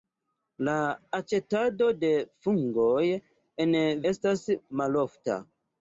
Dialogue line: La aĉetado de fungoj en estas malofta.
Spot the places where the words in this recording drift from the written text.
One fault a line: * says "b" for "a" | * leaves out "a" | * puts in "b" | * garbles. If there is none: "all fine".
all fine